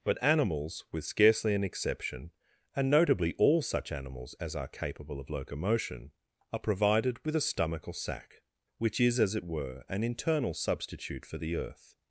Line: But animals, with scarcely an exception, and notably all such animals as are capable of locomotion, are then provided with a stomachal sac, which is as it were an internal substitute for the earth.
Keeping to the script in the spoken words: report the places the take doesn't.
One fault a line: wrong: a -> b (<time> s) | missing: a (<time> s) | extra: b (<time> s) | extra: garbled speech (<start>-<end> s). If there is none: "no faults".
missing: then (6.6 s)